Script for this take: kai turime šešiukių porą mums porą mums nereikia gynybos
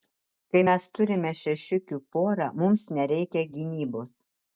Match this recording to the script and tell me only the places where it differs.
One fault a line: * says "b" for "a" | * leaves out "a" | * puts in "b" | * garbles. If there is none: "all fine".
* puts in "mes"
* leaves out "porą mums"